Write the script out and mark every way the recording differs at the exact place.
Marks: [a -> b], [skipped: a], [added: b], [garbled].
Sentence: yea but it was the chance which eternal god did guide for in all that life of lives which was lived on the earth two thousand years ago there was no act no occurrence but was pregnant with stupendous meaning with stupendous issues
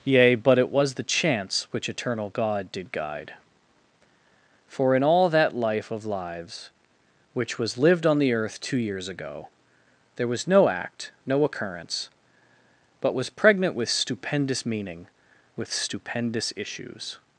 yea but it was the chance which eternal god did guide for in all that life of lives which was lived on the earth two [skipped: thousand] years ago there was no act no occurrence but was pregnant with stupendous meaning with stupendous issues